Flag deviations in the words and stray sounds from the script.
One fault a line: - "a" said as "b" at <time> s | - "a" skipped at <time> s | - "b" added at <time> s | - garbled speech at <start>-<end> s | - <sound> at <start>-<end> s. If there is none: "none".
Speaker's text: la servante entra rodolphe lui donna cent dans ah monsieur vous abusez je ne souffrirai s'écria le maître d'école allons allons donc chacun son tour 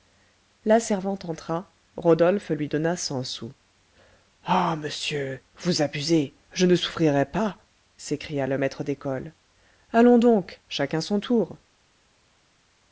- "dans" said as "sous" at 3.2 s
- "pas" added at 7.2 s
- "allons" skipped at 10.2 s